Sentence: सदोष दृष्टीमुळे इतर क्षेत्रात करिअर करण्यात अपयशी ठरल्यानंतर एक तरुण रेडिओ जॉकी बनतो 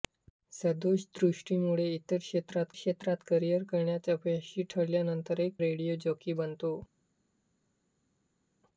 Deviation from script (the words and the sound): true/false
true